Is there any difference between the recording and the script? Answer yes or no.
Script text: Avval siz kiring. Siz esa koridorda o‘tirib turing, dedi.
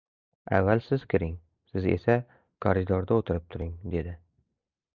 no